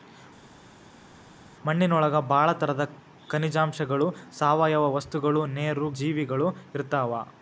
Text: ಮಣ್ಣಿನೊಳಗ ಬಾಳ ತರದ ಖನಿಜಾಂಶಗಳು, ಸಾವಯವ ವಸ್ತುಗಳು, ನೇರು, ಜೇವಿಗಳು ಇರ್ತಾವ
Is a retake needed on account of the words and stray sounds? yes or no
no